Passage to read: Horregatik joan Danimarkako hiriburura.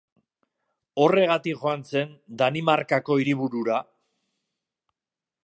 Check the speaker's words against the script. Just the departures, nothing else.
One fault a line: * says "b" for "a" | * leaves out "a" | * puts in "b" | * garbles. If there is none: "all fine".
* puts in "zen"